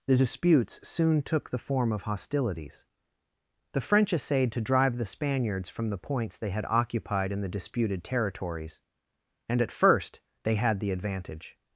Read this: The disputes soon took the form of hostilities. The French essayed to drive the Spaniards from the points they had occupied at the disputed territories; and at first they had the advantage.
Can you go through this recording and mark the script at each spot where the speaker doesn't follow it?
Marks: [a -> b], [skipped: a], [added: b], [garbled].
The disputes soon took the form of hostilities. The French essayed to drive the Spaniards from the points they had occupied [at -> in] the disputed territories; and at first they had the advantage.